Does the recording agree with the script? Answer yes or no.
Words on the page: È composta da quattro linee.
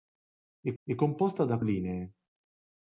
no